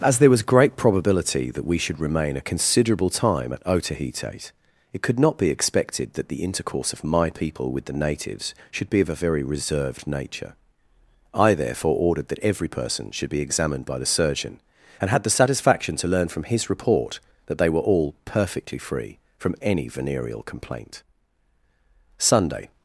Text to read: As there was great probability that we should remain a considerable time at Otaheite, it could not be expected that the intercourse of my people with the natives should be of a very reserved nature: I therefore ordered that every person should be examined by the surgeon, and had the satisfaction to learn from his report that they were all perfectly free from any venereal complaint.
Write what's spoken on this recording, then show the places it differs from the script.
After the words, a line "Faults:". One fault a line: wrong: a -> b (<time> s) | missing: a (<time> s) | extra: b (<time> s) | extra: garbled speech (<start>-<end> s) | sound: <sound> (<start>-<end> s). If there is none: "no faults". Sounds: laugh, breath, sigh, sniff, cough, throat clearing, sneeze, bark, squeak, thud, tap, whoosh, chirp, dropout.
As there was great probability that we should remain a considerable time at Otaheite, it could not be expected that the intercourse of my people with the natives should be of a very reserved nature: I therefore ordered that every person should be examined by the surgeon, and had the satisfaction to learn from his report that they were all perfectly free from any venereal complaint. Sunday
Faults:
extra: Sunday (22.2 s)